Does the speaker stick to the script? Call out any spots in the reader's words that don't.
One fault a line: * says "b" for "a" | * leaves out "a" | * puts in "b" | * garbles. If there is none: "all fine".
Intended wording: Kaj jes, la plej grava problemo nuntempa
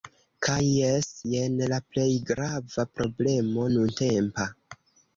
* puts in "jen"